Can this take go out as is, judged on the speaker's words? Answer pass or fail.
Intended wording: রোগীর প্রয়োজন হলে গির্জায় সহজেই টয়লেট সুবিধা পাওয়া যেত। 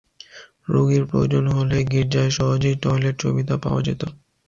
pass